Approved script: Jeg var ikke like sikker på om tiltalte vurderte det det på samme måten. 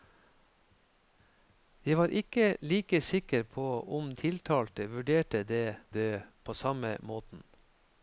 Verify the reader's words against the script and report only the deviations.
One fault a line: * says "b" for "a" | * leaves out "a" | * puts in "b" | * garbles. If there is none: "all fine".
all fine